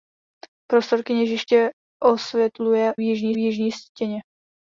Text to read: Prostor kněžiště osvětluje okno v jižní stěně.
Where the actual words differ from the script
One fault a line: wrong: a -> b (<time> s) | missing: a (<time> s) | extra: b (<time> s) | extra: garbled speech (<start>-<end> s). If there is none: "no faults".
wrong: okno -> jižní (3.0 s)